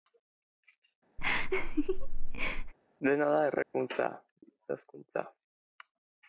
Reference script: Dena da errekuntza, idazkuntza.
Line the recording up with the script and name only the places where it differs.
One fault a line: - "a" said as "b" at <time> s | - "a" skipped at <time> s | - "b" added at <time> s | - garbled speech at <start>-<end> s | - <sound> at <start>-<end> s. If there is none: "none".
- laugh at 1.2-2.7 s
- dropout at 3.6-3.7 s